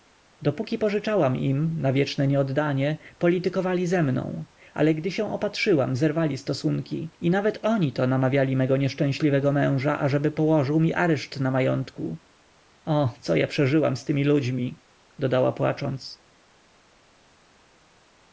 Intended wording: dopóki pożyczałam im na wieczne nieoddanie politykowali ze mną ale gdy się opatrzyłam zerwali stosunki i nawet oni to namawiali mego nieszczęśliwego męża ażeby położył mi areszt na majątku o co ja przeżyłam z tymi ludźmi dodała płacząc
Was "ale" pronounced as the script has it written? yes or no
yes